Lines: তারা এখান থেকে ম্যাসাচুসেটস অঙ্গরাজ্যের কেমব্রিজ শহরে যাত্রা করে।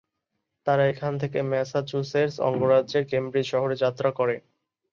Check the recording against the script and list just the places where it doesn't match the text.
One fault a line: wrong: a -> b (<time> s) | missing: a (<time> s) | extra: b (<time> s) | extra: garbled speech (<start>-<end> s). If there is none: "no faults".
no faults